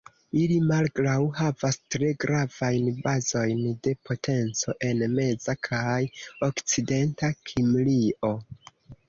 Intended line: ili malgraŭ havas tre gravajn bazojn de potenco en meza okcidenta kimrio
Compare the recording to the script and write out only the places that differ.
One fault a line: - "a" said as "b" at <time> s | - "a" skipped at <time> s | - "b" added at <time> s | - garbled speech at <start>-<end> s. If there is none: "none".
- "kaj" added at 5.7 s